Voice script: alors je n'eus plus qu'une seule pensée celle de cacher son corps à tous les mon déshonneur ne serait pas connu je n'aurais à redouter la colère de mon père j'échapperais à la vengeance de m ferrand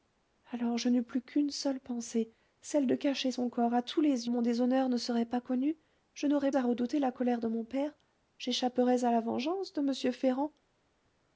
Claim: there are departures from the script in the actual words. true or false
false